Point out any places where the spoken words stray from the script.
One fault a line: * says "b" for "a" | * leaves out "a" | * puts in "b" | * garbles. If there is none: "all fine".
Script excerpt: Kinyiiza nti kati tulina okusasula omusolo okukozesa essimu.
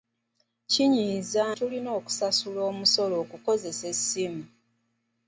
* leaves out "nti kati"